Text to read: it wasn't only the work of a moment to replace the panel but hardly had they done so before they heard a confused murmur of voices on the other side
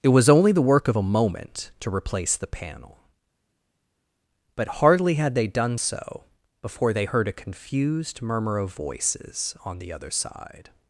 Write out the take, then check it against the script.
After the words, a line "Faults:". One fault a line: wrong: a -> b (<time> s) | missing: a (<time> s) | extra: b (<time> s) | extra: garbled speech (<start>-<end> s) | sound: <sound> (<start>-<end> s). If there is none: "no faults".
it was only the work of a moment to replace the panel but hardly had they done so before they heard a confused murmur of voices on the other side
Faults:
wrong: wasn't -> was (0.1 s)